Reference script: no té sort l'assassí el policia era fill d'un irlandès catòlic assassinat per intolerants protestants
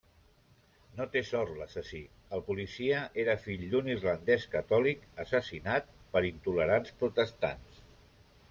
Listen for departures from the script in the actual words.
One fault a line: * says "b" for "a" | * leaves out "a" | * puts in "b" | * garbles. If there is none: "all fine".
all fine